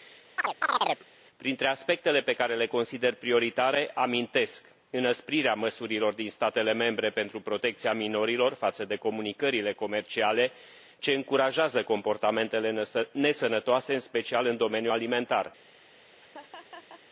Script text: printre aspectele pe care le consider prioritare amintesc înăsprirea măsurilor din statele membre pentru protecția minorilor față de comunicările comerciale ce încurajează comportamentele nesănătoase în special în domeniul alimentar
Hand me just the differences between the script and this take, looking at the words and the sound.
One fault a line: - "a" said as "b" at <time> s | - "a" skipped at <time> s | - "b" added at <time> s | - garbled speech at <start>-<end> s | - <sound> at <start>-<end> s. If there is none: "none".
- chirp at 0.4-1.0 s
- laugh at 16.2-17.0 s